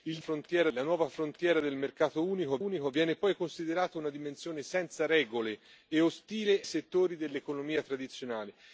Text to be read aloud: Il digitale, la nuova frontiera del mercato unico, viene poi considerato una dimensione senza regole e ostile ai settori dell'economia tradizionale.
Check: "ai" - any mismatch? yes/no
yes